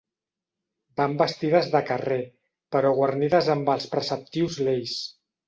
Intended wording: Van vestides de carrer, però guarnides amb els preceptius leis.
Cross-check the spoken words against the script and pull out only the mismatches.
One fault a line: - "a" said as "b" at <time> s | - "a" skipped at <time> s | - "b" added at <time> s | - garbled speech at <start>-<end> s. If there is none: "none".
none